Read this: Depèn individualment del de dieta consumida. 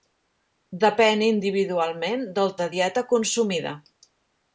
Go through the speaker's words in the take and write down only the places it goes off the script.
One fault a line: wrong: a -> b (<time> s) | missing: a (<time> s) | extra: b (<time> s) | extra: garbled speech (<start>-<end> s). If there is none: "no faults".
no faults